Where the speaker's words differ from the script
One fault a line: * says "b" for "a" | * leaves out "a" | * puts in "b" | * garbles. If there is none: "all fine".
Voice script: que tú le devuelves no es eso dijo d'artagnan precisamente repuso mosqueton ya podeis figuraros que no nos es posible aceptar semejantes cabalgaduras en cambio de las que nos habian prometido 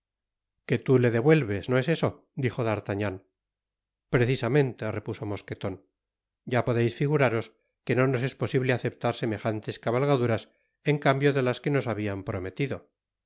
all fine